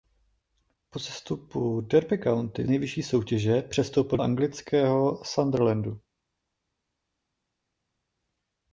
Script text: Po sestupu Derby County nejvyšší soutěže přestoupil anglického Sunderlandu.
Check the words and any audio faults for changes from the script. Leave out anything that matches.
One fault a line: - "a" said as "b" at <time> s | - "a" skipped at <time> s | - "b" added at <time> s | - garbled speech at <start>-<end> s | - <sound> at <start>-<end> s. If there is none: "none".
none